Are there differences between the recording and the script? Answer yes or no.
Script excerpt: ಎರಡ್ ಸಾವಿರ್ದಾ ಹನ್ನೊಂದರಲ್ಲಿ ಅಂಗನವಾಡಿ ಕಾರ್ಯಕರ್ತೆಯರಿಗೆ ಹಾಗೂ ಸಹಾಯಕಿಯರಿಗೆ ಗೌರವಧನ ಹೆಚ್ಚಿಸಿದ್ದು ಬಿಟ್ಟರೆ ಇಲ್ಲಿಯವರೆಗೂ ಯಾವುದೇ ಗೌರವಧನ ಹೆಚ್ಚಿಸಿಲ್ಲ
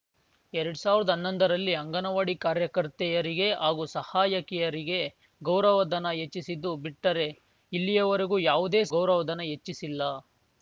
no